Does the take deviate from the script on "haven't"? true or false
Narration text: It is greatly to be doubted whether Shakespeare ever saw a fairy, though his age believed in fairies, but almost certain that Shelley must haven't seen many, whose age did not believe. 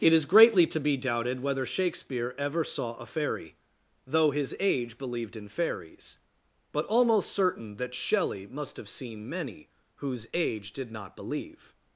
true